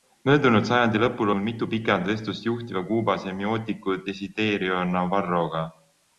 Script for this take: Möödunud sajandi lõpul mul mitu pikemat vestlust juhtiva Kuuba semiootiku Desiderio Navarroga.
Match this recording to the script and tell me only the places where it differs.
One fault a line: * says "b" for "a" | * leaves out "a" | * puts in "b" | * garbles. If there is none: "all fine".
all fine